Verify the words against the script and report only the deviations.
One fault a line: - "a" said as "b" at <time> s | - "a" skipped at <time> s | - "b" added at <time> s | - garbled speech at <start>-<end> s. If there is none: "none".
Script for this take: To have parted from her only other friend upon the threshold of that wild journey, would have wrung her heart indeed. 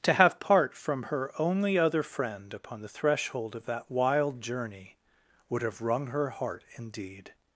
- "parted" said as "part" at 0.4 s